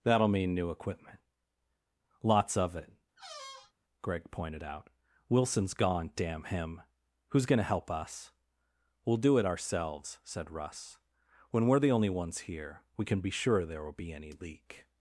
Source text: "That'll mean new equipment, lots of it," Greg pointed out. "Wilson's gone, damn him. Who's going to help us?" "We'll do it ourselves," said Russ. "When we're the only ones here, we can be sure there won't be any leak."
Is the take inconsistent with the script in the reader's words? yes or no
yes